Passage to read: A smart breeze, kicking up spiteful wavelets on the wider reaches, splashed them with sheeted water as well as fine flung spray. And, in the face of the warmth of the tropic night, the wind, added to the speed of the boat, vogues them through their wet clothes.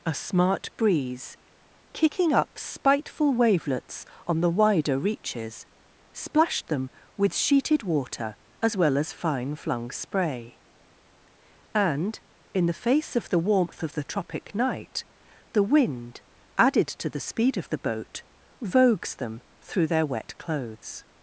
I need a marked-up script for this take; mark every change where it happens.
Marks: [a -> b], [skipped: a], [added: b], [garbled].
A smart breeze, kicking up spiteful wavelets on the wider reaches, splashed them with sheeted water as well as fine flung spray. And, in the face of the warmth of the tropic night, the wind, added to the speed of the boat, vogues them through their wet clothes.